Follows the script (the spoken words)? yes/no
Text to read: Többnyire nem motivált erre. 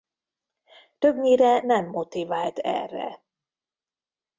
yes